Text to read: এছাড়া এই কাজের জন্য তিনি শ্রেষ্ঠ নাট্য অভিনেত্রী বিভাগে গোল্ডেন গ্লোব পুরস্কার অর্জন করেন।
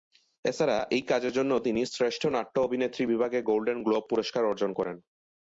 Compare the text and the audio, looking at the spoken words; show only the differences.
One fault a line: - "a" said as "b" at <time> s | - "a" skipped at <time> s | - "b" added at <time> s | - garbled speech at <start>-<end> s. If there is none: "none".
none